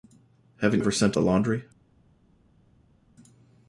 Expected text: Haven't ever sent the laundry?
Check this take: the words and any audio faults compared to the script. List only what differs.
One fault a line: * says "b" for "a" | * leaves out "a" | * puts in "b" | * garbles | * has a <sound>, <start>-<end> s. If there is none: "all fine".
all fine